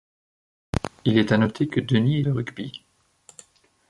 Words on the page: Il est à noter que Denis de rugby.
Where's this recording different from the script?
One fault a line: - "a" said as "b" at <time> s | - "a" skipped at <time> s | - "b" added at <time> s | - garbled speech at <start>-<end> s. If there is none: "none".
none